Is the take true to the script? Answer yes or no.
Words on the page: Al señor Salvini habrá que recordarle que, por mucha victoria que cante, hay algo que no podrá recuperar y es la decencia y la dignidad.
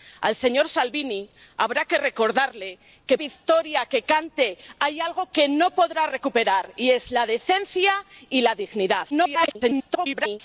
no